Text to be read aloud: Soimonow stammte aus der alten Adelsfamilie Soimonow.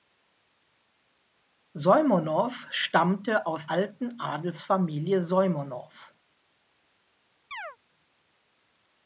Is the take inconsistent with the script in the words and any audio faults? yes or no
yes